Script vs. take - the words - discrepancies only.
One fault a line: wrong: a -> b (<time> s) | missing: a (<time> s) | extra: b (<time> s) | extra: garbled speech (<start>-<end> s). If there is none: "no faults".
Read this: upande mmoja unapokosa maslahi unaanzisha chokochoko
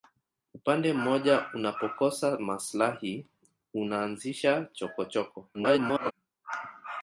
extra: garbled speech (5.5-6.1 s)